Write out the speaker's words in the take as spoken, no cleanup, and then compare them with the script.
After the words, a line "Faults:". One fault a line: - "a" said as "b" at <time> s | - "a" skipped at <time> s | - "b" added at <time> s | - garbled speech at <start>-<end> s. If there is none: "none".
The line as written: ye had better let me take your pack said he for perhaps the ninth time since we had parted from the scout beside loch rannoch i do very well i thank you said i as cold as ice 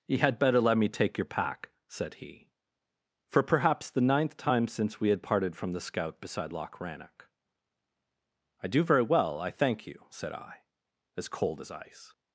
ye had better let me take your pack said he for perhaps the ninth time since we had parted from the scout beside loch rannoch i do very well i thank you said i as cold as ice
Faults:
none